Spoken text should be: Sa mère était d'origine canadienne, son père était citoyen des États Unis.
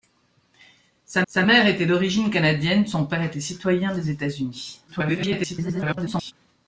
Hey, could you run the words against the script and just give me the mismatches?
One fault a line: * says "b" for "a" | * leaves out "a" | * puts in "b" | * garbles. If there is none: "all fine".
* puts in "sa"
* garbles